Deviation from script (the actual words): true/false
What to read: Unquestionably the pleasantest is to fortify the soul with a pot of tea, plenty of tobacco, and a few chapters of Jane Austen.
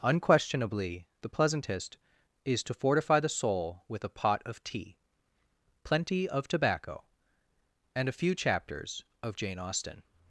false